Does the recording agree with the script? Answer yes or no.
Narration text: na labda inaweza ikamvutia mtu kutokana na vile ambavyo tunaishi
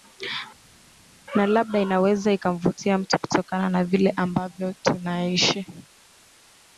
yes